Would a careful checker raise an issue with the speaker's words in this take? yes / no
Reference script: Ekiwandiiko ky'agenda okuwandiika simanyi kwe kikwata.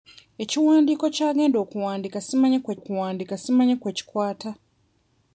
yes